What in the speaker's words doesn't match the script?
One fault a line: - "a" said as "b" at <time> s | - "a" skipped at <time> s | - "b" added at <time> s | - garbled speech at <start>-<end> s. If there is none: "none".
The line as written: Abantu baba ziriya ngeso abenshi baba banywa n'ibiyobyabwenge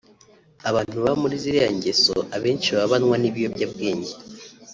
- "muri" added at 1.2 s